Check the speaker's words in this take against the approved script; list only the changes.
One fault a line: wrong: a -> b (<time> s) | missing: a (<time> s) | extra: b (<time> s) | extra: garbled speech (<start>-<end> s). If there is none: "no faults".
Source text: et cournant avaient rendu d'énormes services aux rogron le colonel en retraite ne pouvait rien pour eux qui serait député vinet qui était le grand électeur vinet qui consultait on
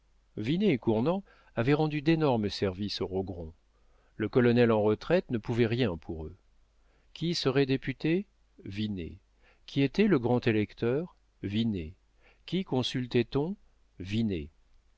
no faults